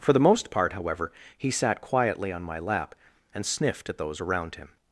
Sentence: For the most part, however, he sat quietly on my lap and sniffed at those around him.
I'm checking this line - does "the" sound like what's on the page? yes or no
yes